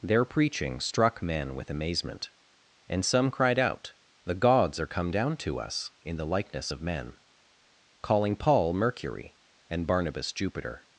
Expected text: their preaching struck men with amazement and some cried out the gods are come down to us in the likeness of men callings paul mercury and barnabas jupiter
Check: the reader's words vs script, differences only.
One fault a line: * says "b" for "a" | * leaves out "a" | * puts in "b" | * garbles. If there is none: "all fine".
* says "calling" for "callings"